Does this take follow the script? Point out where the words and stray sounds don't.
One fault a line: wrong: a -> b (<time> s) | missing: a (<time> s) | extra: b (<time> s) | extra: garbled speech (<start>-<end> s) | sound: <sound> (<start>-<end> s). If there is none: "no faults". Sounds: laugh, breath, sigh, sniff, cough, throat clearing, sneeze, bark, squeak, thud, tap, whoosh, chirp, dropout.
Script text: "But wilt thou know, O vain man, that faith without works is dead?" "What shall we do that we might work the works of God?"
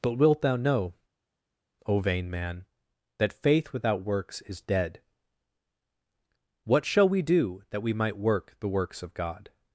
no faults